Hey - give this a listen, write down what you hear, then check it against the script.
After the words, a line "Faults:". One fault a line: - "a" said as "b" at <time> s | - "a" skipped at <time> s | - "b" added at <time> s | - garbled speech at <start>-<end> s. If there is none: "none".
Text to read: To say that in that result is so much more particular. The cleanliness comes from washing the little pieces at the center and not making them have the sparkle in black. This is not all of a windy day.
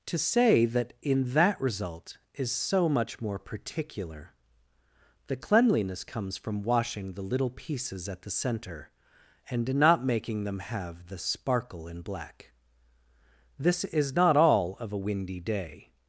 To say that in that result is so much more particular. The cleanliness comes from washing the little pieces at the center and not making them have the sparkle in black. This is not all of a windy day.
Faults:
none